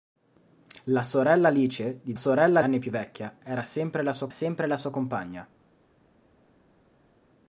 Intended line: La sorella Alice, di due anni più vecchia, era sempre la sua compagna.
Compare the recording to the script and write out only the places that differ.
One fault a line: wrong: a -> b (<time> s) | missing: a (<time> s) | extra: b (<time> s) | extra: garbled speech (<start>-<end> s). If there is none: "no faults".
wrong: due -> sorella (2.1 s)
extra: sempre la sua (4.3 s)